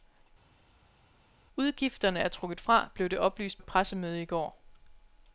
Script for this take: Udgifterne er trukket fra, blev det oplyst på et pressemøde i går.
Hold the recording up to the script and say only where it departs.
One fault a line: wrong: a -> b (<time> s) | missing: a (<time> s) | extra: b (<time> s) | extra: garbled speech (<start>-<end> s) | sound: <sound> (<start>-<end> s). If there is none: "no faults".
missing: på (3.6 s)